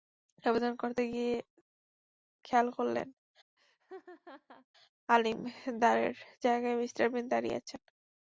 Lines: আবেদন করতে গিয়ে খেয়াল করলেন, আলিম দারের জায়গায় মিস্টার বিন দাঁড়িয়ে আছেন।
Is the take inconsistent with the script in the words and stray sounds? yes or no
yes